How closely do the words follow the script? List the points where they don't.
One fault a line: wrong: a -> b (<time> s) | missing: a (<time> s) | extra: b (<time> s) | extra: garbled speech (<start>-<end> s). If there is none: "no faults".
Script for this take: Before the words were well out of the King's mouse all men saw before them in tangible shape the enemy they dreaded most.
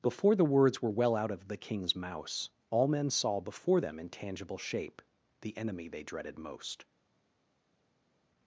no faults